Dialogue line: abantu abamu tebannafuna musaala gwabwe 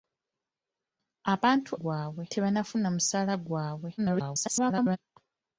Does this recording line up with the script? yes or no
no